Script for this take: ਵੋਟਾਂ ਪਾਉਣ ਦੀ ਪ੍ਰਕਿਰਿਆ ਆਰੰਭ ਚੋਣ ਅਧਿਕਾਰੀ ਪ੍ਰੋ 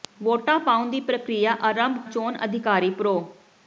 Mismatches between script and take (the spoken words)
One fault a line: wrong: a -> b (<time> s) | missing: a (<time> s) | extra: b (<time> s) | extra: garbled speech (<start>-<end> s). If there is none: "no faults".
no faults